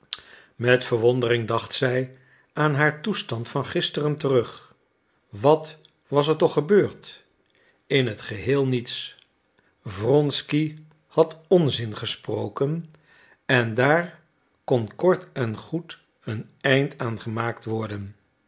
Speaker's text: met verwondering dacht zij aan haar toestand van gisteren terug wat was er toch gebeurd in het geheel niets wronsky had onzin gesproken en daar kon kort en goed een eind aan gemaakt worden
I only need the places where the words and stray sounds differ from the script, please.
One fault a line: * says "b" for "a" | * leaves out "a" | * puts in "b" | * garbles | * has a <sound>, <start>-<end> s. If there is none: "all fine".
all fine